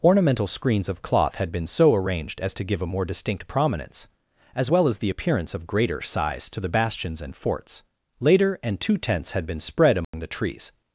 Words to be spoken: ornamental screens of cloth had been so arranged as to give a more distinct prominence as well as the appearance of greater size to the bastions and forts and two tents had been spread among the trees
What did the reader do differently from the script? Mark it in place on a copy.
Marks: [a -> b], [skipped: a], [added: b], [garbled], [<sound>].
ornamental screens of cloth had been so arranged as to give a more distinct prominence as well as the appearance of greater size to the bastions and forts [added: later] and two tents had been spread among [dropout] the trees